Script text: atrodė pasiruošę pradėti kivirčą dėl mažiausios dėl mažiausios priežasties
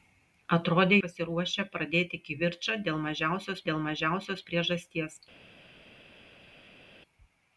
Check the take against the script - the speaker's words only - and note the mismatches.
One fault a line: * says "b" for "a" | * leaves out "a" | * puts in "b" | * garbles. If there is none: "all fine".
all fine